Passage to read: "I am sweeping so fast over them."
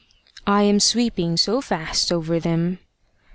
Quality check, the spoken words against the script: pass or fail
pass